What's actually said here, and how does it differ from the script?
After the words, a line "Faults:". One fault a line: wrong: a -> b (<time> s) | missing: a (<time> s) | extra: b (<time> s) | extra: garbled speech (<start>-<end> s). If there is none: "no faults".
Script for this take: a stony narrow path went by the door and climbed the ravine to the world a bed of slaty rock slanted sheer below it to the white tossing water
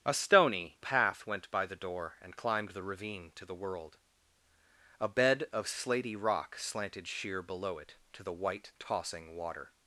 a stony path went by the door and climbed the ravine to the world a bed of slaty rock slanted sheer below it to the white tossing water
Faults:
missing: narrow (0.8 s)